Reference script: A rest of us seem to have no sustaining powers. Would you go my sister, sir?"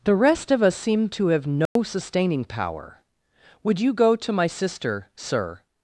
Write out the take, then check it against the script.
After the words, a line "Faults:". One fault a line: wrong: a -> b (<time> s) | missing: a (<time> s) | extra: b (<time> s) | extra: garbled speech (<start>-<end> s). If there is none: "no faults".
The rest of us seem to have no sustaining power. Would you go to my sister, sir?"
Faults:
wrong: A -> The (0.0 s)
wrong: powers -> power (2.5 s)
extra: to (4.2 s)